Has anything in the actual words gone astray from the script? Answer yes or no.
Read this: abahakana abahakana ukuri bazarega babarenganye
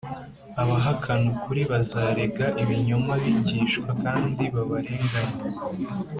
yes